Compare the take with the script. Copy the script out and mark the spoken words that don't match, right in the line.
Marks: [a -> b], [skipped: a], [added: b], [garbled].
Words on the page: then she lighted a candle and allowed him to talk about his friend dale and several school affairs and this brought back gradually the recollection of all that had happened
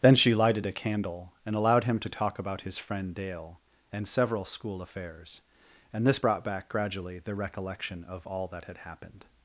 then she lighted a candle and allowed him to talk about his friend dale and several school affairs and this brought back gradually the recollection of all that had happened